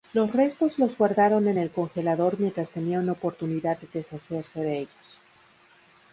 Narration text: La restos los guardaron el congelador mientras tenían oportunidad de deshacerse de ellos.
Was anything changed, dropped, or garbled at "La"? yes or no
yes